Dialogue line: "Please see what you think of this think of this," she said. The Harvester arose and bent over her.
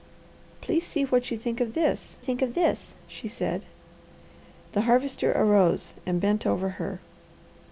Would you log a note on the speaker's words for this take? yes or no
no